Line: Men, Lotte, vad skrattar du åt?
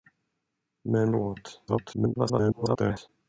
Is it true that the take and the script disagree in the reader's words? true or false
true